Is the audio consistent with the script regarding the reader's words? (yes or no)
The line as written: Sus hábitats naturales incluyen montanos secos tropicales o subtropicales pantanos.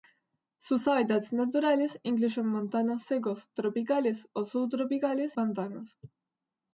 yes